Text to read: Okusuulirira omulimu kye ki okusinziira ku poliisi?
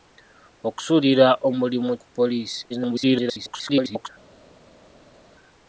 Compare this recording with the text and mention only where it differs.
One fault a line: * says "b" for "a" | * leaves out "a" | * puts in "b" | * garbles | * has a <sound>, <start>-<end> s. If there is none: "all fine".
* leaves out "kye ki okusinziira"
* garbles